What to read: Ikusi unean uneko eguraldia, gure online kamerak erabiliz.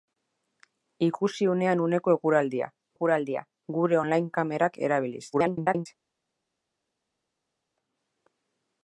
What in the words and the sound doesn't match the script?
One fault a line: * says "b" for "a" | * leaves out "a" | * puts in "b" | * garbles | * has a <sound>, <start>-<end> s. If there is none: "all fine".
* puts in "eguraldia"
* garbles